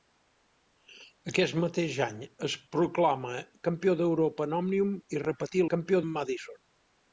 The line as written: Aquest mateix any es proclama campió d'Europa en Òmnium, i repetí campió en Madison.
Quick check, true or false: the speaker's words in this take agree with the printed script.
true